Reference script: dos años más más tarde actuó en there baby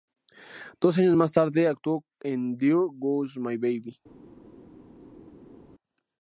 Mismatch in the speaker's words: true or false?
true